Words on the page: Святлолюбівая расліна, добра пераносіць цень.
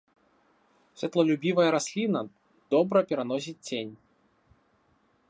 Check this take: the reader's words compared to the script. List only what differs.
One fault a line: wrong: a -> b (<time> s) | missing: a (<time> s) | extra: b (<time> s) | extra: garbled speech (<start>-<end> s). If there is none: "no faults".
no faults